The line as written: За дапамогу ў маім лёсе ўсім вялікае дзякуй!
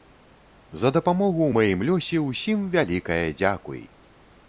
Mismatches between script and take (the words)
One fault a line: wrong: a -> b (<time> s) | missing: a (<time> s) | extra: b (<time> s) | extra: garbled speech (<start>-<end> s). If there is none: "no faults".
no faults